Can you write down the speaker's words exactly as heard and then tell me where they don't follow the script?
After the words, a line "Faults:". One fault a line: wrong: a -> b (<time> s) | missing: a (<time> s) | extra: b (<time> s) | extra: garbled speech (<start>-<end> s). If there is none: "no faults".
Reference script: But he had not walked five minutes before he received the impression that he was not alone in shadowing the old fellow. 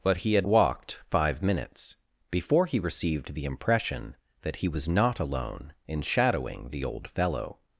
But he had walked five minutes before he received the impression that he was not alone in shadowing the old fellow.
Faults:
missing: not (0.5 s)